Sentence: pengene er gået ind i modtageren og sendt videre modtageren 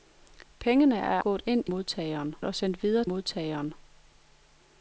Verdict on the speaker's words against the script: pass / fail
pass